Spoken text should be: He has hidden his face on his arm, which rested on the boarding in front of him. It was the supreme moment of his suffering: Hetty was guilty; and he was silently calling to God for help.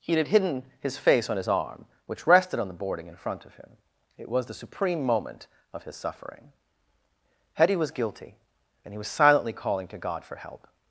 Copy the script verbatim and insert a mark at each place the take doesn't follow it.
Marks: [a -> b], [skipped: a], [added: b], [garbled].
He [has -> had] hidden his face on his arm, which rested on the boarding in front of him. It was the supreme moment of his suffering: Hetty was guilty; and he was silently calling to God for help.